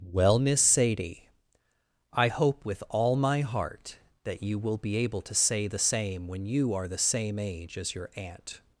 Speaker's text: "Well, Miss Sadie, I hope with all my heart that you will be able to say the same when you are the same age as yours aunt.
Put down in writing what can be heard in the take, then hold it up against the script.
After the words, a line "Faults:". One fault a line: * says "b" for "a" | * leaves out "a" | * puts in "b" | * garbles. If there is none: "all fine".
"Well, Miss Sadie, I hope with all my heart that you will be able to say the same when you are the same age as your aunt.
Faults:
* says "your" for "yours"